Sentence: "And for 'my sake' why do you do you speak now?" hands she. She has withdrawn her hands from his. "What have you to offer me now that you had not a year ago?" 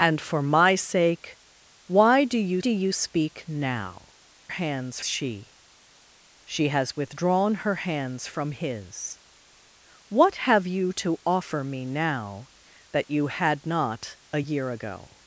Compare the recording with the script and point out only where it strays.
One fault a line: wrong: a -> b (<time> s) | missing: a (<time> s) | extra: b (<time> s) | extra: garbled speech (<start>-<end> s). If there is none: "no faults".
no faults